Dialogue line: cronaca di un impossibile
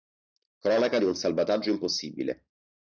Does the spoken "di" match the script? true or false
true